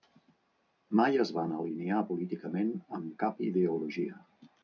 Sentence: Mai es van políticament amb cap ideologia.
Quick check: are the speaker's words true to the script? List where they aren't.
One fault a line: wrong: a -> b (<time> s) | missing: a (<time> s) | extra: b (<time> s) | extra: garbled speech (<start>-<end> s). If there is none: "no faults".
extra: alinear (1.6 s)